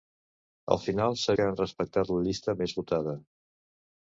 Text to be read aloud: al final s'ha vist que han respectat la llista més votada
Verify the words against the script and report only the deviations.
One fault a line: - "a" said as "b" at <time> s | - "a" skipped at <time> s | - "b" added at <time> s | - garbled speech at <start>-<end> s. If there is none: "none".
- "vist" skipped at 1.4 s